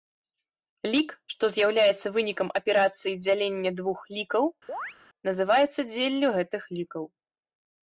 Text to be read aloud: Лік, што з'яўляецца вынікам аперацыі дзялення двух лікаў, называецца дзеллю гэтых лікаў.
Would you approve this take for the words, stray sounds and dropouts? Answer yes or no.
no